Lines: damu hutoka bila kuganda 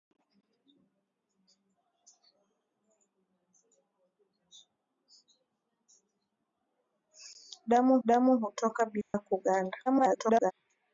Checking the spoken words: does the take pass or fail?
fail